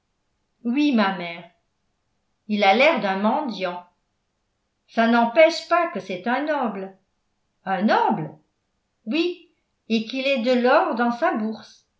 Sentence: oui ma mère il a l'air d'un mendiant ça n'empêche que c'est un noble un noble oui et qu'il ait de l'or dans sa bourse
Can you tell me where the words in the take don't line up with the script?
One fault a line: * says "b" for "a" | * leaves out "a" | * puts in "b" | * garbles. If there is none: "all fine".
* puts in "pas"